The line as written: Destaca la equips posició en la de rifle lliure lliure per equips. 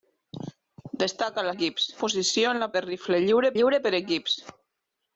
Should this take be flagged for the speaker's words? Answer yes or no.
no